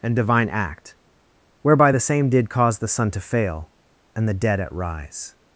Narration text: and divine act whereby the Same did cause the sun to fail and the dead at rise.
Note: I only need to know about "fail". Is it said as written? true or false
true